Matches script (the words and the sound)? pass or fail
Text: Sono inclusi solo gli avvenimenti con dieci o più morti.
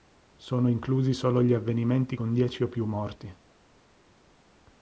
pass